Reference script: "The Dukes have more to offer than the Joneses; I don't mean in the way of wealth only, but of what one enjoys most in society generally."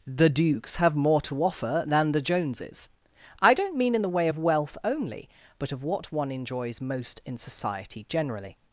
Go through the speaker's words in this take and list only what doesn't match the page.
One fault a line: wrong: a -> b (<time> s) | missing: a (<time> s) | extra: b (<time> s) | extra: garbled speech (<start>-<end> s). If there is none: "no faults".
no faults